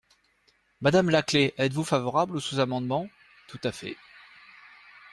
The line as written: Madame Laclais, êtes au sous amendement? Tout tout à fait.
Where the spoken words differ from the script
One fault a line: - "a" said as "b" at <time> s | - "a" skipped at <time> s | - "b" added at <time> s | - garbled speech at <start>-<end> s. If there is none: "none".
- "vous favorable" added at 1.7 s
- "tout" skipped at 3.6 s